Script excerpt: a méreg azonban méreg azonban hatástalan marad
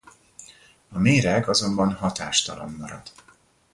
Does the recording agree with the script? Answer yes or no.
no